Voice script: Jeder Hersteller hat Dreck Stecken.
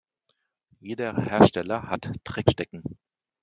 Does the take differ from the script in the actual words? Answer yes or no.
no